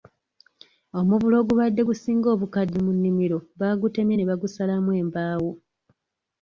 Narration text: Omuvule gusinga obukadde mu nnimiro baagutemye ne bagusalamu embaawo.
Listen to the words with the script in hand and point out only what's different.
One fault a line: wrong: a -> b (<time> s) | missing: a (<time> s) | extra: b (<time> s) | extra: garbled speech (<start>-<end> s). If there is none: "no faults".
extra: ogubadde (1.4 s)